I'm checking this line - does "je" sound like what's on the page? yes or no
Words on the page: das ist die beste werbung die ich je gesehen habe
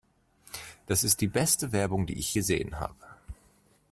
no